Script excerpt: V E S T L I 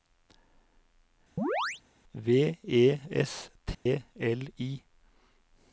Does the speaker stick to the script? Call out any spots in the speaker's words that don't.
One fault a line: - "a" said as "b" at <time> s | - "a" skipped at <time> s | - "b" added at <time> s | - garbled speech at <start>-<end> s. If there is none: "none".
none